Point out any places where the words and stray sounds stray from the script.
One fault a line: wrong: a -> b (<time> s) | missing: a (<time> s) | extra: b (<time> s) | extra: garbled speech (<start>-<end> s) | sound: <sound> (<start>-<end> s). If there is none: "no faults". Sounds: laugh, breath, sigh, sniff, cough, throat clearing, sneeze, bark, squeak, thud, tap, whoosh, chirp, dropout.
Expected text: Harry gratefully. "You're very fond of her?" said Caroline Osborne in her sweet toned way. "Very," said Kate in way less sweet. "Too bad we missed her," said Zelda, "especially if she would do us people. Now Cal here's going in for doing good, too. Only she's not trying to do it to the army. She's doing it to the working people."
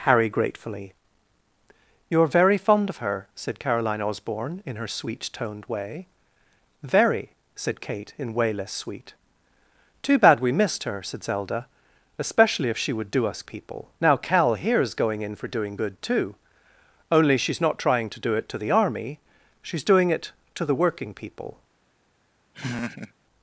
sound: laugh (22.5-23.1 s)